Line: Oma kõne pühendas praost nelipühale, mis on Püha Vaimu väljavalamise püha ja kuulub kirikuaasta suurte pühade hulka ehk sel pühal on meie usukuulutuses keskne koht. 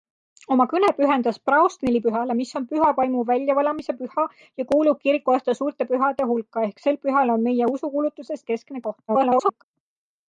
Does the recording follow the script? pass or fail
fail